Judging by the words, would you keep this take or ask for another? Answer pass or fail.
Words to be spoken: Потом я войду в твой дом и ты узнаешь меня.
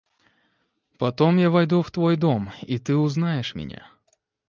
pass